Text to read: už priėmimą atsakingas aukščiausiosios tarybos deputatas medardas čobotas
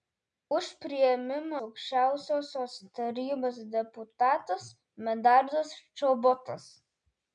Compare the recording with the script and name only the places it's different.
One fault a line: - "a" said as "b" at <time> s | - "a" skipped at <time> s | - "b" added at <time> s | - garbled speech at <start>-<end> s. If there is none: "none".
- "atsakingas" skipped at 1.6 s